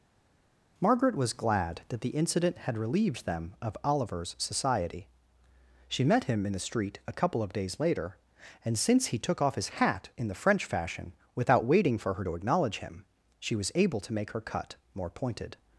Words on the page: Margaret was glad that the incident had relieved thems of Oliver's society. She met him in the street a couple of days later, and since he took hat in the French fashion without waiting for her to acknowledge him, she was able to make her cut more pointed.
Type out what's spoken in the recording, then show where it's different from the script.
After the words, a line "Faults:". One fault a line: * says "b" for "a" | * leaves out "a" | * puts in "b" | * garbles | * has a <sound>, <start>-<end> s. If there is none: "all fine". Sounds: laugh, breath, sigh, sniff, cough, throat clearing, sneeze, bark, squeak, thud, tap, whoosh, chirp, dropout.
Margaret was glad that the incident had relieved them of Oliver's society. She met him in the street a couple of days later, and since he took off his hat in the French fashion without waiting for her to acknowledge him, she was able to make her cut more pointed.
Faults:
* says "them" for "thems"
* puts in "off his"